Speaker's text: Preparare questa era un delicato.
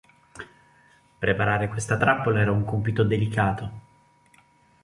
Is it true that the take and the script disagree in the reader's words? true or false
true